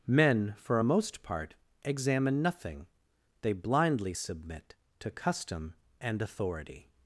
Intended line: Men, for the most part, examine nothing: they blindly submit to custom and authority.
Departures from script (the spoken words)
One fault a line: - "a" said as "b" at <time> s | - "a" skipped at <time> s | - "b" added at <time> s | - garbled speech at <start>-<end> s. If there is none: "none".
- "the" said as "a" at 0.8 s